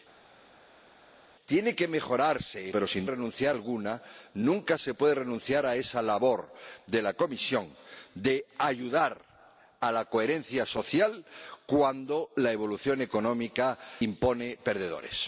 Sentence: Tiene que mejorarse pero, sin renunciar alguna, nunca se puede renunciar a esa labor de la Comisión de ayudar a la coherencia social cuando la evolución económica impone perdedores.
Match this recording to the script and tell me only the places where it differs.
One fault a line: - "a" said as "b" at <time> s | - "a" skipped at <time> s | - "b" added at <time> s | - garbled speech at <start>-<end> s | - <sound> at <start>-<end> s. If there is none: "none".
none